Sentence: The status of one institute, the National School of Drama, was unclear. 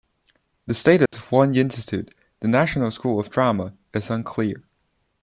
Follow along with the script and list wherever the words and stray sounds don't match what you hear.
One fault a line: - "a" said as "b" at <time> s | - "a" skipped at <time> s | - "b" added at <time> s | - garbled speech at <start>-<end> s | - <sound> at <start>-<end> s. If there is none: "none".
- dropout at 1.1-1.1 s
- "was" said as "is" at 3.9 s